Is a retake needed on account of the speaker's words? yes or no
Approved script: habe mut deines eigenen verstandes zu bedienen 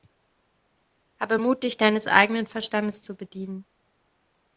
yes